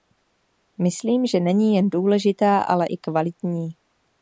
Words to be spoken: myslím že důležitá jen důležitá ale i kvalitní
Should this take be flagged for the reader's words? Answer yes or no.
yes